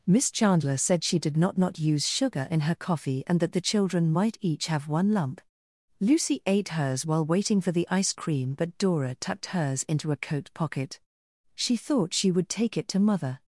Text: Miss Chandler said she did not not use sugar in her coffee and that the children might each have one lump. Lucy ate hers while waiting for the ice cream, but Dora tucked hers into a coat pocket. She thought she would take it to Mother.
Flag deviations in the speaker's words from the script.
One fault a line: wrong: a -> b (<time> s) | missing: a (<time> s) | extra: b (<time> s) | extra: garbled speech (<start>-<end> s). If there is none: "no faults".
no faults